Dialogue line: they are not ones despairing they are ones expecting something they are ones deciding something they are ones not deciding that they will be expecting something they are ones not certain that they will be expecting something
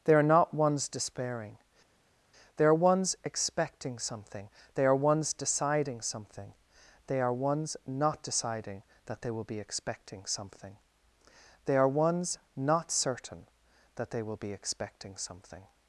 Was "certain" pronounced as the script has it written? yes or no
yes